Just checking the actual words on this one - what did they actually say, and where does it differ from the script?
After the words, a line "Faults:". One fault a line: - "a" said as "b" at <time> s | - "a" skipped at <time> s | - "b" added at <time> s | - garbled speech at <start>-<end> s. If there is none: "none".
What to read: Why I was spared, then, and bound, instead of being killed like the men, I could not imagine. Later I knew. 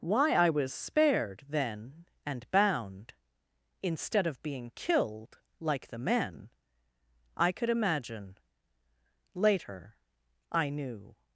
Why I was spared, then, and bound, instead of being killed like the men, I could imagine. Later I knew.
Faults:
- "not" skipped at 7.7 s